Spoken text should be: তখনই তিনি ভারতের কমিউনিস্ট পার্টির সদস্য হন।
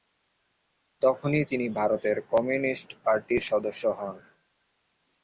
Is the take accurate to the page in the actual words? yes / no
yes